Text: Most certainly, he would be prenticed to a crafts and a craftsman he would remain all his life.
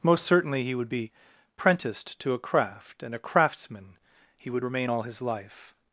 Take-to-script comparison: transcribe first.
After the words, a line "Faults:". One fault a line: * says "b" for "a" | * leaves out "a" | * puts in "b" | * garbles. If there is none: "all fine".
Most certainly, he would be prenticed to a craft and a craftsman he would remain all his life.
Faults:
* says "craft" for "crafts"